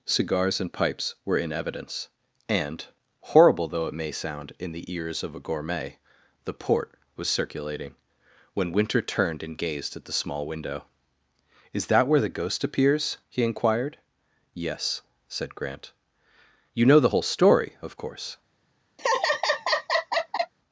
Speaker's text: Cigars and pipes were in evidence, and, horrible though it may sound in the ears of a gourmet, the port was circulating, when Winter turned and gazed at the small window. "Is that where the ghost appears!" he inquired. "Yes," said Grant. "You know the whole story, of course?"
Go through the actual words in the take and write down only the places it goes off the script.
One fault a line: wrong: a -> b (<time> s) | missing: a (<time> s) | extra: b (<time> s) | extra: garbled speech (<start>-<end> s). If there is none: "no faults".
no faults